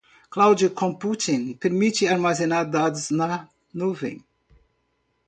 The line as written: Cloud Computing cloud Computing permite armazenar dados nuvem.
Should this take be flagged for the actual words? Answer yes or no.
yes